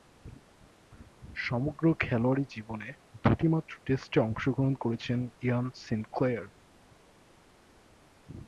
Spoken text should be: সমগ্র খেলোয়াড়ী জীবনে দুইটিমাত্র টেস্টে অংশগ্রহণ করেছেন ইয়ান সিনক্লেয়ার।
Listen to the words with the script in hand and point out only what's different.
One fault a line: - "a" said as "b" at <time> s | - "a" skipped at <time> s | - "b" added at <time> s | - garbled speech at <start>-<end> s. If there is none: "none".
none